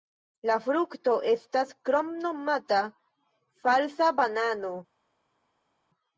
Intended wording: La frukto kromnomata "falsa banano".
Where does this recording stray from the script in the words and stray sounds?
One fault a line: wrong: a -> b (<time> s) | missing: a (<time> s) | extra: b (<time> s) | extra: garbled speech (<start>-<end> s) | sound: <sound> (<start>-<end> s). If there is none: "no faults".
extra: estas (1.3 s)